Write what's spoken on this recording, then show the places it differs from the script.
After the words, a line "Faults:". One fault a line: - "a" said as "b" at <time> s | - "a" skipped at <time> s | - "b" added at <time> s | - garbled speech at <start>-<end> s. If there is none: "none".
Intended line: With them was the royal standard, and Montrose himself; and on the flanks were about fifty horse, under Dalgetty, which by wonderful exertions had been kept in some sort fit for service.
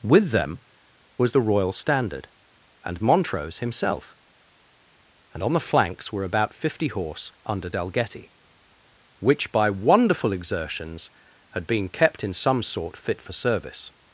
With them was the royal standard, and Montrose himself; and on the flanks were about fifty horse, under Dalgetty, which by wonderful exertions had been kept in some sort fit for service.
Faults:
none